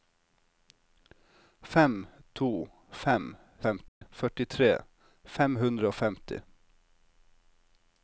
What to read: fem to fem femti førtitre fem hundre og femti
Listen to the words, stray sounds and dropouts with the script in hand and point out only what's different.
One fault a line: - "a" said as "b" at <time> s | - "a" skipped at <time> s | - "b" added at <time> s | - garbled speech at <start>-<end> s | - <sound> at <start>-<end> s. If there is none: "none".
- dropout at 3.9-4.0 s